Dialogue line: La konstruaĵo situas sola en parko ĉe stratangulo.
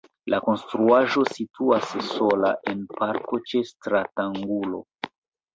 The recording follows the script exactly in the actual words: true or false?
true